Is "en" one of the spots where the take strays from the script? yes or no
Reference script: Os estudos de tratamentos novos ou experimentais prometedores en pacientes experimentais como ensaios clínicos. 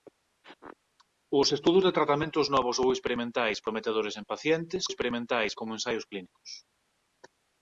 no